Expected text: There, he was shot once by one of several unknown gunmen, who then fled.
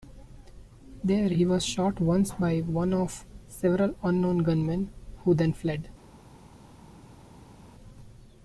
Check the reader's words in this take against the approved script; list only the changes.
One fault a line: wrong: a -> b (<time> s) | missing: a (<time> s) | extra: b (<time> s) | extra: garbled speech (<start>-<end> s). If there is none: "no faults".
no faults